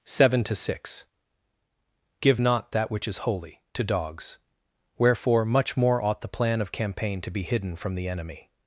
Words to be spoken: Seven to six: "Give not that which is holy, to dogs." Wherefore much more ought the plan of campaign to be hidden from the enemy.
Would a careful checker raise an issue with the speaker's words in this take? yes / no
no